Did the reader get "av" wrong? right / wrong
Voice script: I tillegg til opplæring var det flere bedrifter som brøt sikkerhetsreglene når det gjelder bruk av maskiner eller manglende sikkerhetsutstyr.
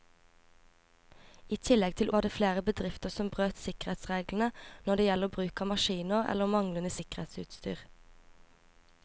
right